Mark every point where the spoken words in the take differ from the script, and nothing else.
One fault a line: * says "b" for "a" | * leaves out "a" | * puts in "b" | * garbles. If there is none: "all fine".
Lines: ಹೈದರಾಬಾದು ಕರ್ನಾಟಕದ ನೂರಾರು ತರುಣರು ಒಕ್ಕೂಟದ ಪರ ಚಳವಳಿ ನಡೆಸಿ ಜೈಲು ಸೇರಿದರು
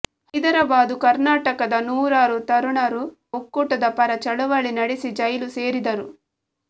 all fine